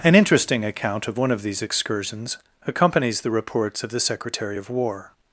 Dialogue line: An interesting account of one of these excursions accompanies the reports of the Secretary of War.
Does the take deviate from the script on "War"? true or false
false